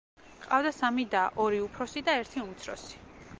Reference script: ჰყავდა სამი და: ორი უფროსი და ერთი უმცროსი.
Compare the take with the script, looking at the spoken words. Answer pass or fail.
pass